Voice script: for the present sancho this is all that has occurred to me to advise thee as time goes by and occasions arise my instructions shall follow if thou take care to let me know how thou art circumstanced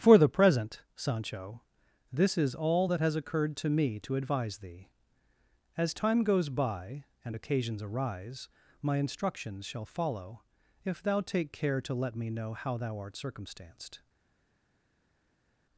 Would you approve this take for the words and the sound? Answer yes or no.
yes